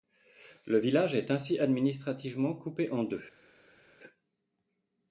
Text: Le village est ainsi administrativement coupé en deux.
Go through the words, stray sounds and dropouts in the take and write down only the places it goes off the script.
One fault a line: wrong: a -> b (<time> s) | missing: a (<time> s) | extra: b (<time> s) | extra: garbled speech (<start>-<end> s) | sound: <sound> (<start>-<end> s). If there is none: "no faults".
no faults